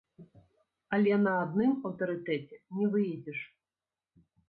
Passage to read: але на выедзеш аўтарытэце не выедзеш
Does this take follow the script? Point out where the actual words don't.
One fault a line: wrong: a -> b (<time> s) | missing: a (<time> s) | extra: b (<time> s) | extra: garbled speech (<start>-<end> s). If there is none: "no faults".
wrong: выедзеш -> адным (1.4 s)